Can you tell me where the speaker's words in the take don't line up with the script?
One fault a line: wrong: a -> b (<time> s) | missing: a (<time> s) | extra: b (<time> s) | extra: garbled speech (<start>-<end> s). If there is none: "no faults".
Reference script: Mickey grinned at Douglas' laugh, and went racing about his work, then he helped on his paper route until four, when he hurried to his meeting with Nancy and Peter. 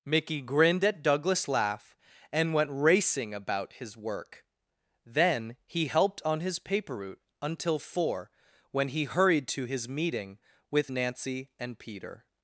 no faults